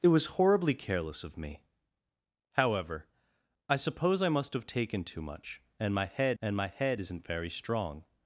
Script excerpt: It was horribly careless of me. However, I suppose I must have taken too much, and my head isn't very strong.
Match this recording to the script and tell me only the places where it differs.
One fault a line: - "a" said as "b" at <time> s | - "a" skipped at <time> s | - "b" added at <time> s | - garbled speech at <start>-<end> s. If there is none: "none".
- "and my head" added at 6.4 s